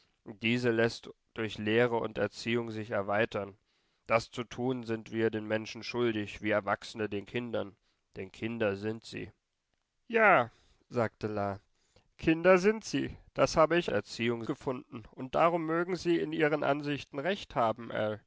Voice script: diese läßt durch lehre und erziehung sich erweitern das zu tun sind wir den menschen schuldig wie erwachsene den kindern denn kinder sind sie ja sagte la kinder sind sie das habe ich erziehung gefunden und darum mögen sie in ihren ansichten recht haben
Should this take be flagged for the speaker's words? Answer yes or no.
no